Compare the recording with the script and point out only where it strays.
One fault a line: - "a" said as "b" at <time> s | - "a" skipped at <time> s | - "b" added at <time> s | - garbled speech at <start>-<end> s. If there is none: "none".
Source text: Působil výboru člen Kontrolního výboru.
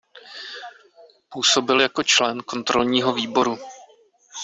- "výboru" said as "jako" at 1.8 s